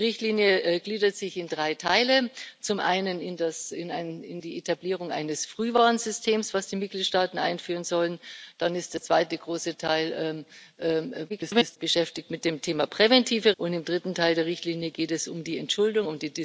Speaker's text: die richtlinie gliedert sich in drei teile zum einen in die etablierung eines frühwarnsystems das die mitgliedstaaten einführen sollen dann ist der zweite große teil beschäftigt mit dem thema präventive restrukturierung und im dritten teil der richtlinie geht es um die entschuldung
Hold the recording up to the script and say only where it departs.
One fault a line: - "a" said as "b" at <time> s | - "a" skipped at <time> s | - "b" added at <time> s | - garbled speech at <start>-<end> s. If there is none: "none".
- garbled speech at 11.3-11.8 s
- "restrukturierung" skipped at 13.5 s